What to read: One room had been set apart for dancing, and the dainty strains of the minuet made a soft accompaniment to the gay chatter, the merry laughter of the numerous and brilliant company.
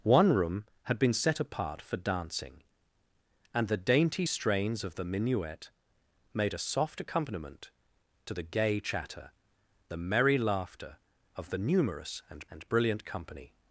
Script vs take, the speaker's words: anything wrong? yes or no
yes